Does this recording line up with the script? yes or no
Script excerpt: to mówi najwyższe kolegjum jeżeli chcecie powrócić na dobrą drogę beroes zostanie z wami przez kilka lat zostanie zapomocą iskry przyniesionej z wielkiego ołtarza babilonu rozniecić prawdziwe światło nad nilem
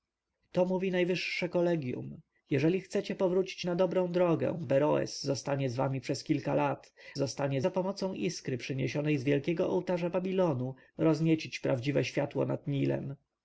yes